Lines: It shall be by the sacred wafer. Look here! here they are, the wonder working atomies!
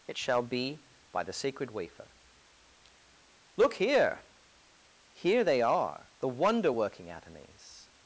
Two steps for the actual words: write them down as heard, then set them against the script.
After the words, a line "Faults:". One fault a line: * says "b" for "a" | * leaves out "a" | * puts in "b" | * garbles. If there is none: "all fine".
It shall be by the sacred wafer. Look here! here they are, the wonder working atomies!
Faults:
all fine